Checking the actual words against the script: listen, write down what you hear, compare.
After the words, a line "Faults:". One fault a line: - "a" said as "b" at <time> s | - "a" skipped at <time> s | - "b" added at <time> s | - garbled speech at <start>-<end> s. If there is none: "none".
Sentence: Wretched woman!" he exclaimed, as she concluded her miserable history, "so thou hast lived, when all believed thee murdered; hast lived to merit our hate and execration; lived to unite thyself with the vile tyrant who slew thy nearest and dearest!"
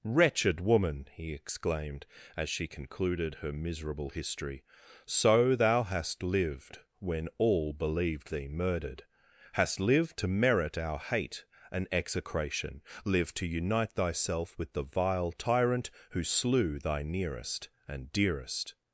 Wretched woman!" he exclaimed, as she concluded her miserable history, "so thou hast lived, when all believed thee murdered; hast lived to merit our hate and execration; lived to unite thyself with the vile tyrant who slew thy nearest and dearest!"
Faults:
none